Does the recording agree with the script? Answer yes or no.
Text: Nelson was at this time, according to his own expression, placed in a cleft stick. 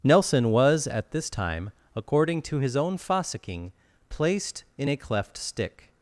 no